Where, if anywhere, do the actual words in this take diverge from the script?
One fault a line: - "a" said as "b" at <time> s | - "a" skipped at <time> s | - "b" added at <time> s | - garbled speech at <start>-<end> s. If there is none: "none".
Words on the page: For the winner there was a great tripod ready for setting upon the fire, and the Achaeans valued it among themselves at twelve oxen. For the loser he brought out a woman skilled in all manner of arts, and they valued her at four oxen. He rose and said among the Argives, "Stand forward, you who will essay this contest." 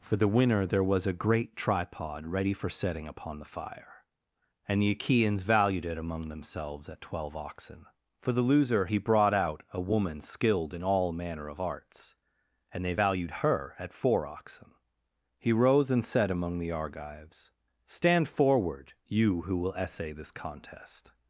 none